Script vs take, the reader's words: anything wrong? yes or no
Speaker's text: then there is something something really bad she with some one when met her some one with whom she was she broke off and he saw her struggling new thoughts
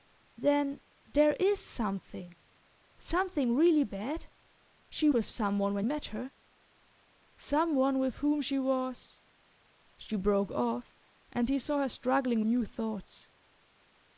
no